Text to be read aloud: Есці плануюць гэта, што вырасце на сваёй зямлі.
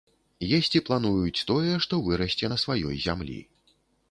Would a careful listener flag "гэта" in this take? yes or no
yes